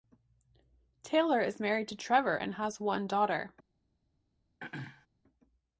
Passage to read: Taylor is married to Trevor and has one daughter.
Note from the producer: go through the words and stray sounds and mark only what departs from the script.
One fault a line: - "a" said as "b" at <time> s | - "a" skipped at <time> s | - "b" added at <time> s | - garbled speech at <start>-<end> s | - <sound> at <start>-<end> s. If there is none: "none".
- throat clearing at 4.6-5.1 s